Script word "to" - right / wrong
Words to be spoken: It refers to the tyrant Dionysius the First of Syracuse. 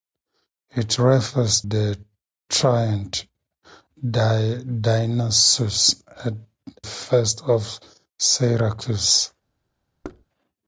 wrong